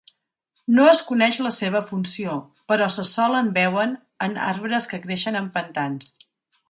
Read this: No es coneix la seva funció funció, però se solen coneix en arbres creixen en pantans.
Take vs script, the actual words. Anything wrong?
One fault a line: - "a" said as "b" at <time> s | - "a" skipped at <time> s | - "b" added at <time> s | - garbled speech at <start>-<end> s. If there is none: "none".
- "funció" skipped at 2.4 s
- "coneix" said as "veuen" at 3.6 s
- "que" added at 4.9 s